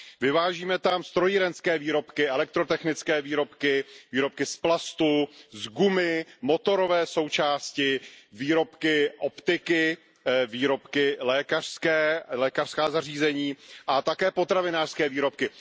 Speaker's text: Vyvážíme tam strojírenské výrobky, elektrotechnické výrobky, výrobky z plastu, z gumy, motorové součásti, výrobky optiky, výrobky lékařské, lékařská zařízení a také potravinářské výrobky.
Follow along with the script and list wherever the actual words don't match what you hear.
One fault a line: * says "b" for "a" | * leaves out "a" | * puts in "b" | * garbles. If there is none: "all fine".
all fine